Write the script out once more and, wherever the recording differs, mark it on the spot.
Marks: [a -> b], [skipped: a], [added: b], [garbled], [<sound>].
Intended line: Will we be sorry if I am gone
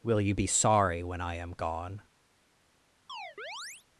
Will [we -> you] be sorry [if -> when] I am gone [chirp]